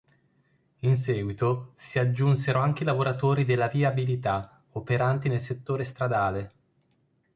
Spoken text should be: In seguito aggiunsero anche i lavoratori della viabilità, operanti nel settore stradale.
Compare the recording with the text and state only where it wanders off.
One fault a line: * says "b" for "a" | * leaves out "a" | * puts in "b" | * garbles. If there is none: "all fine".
* puts in "si"